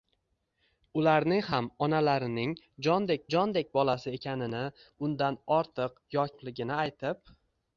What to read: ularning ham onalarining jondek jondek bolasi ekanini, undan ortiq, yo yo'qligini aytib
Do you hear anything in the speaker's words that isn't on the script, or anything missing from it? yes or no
no